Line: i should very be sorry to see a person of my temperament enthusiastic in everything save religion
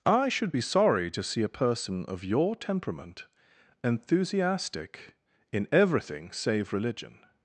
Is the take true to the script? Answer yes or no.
no